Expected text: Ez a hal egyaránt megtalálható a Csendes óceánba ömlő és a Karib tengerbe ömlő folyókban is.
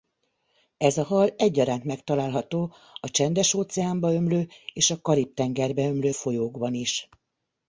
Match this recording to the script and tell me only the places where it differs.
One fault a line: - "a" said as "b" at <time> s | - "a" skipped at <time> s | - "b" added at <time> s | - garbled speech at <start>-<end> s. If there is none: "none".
none